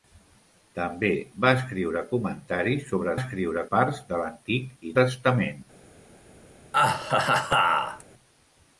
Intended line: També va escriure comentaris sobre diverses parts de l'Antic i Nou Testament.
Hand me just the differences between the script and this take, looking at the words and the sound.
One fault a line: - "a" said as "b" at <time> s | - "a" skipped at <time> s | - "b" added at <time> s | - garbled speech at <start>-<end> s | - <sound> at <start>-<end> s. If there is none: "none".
- "diverses" said as "escriure" at 3.2 s
- "Nou" skipped at 4.9 s
- laugh at 6.7-8.0 s